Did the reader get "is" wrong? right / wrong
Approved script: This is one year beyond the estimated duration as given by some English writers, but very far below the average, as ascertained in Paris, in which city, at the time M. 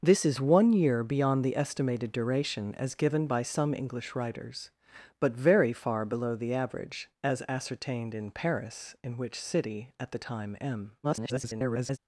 right